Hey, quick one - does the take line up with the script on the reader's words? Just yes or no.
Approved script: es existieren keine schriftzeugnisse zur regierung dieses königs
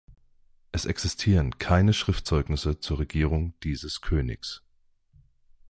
yes